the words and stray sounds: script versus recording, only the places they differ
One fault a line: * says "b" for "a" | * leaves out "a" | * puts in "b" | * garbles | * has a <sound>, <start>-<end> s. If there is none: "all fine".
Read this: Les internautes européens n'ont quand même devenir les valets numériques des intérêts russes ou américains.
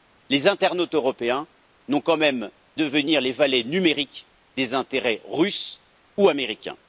all fine